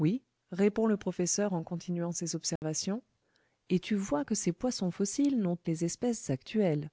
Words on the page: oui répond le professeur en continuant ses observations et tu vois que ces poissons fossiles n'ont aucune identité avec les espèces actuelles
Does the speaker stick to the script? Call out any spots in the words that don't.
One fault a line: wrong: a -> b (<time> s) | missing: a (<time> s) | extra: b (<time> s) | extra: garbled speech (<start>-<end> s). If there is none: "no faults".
missing: aucune identité avec (5.6 s)